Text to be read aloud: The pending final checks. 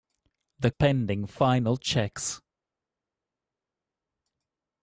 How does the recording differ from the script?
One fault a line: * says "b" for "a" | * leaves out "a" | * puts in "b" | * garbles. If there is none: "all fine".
all fine